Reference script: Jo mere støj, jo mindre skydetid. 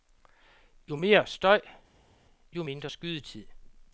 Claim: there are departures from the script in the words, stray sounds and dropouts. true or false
false